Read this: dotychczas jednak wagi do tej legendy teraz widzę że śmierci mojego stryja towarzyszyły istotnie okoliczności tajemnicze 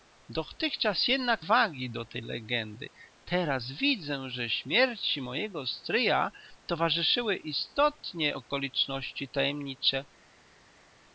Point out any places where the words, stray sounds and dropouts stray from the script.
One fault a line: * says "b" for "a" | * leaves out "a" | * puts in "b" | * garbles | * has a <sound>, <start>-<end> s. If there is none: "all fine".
all fine